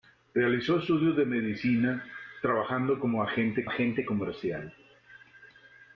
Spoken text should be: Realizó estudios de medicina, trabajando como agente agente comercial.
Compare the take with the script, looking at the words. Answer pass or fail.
pass